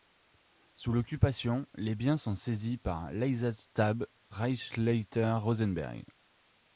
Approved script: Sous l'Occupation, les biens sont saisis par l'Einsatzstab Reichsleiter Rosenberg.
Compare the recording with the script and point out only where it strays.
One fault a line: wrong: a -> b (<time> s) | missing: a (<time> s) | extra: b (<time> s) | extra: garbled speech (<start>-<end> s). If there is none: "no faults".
no faults